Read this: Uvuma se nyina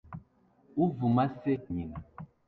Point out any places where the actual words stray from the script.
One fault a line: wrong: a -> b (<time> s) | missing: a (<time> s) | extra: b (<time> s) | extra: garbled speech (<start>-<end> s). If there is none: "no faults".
no faults